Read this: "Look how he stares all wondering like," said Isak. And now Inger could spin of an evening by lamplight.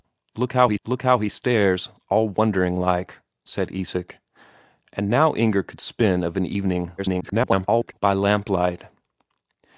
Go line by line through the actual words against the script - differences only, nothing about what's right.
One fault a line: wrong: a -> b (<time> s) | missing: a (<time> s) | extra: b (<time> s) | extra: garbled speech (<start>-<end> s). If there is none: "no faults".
extra: look how he (0.8 s)
extra: garbled speech (7.0-7.9 s)